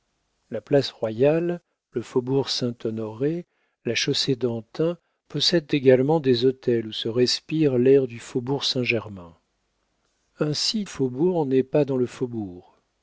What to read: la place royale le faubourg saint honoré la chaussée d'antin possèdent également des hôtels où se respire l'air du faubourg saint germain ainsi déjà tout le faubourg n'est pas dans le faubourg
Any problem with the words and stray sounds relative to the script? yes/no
yes